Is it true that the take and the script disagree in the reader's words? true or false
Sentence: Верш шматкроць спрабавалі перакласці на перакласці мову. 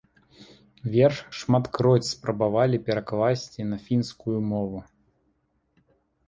true